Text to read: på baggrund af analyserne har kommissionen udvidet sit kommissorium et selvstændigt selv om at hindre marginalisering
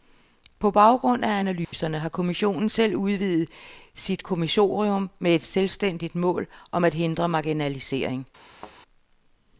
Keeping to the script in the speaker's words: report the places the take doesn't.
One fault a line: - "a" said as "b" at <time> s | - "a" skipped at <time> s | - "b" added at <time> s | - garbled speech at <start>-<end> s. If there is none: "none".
- "selv" added at 2.7 s
- "med" added at 5.2 s
- "selv" said as "mål" at 6.1 s